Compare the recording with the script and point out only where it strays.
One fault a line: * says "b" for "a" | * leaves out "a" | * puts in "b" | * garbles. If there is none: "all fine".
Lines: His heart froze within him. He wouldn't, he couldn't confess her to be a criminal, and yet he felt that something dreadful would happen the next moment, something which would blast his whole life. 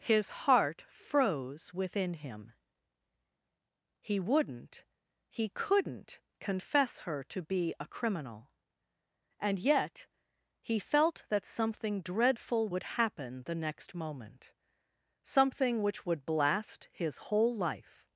all fine